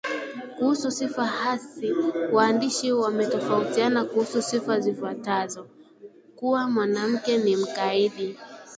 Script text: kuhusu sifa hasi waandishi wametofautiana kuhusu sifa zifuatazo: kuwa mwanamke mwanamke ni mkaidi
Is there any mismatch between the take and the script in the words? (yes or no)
yes